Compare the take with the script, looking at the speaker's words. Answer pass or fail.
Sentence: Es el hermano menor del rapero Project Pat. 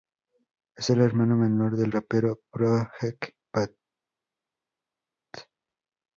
pass